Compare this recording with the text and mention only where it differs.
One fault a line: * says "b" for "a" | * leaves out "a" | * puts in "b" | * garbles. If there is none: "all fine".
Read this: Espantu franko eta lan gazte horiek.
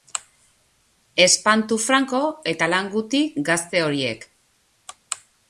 * puts in "guti"